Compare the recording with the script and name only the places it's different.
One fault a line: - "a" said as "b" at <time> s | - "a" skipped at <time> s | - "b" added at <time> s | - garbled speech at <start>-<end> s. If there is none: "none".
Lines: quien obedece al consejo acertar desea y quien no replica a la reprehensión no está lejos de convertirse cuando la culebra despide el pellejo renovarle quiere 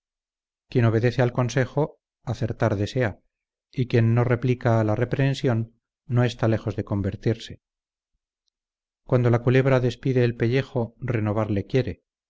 none